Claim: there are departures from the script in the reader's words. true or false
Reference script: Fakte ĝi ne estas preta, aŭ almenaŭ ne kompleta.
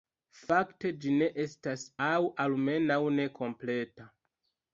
true